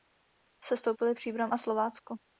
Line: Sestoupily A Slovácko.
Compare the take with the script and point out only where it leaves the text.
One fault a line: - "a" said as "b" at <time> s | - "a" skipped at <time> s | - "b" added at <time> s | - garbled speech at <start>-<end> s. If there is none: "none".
- "Příbram" added at 1.1 s